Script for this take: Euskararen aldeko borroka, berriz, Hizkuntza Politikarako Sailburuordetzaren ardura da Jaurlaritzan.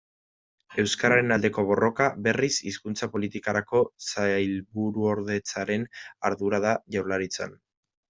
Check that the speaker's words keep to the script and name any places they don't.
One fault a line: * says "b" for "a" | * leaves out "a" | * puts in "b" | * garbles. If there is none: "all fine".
all fine